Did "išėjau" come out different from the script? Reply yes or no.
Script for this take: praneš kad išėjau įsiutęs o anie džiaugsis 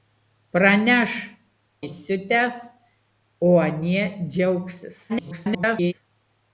yes